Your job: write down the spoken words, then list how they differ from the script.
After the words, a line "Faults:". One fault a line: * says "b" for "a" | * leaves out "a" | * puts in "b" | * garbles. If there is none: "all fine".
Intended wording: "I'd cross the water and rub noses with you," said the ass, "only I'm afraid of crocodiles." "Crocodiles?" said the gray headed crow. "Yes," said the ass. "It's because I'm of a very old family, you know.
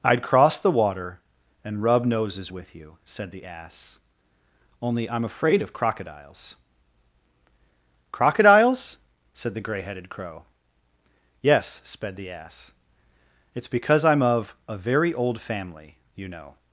"I'd cross the water and rub noses with you," said the ass, "only I'm afraid of crocodiles." "Crocodiles?" said the gray headed crow. "Yes," sped the ass. "It's because I'm of a very old family, you know.
Faults:
* says "sped" for "said"